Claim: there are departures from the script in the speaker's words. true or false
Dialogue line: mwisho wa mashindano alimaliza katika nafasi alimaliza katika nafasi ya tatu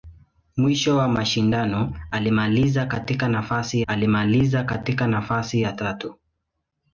false